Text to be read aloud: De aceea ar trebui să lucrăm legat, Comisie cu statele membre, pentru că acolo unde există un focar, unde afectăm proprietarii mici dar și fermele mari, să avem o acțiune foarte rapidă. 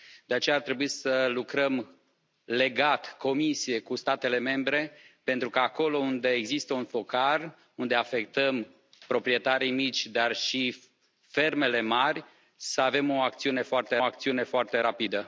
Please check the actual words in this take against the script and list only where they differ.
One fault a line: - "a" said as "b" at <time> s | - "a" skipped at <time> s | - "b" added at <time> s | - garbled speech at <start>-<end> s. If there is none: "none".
- "acțiune foarte" added at 14.0 s